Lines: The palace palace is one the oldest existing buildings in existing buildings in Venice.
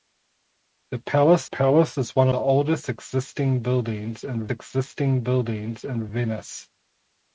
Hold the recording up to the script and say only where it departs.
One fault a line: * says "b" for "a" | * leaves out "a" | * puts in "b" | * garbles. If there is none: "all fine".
all fine